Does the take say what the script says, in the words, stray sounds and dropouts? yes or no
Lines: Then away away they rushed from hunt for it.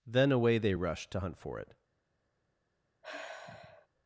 no